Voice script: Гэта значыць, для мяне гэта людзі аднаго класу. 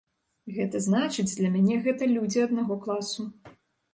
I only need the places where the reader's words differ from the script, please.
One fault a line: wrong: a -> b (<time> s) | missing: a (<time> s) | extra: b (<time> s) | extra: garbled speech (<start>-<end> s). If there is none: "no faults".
no faults